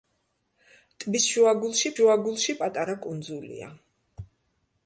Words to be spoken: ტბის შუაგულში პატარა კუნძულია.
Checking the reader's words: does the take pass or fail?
fail